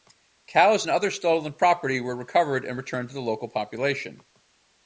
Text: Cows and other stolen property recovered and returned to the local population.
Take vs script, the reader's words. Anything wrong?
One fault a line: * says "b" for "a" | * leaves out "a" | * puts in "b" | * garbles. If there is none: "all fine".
* puts in "were"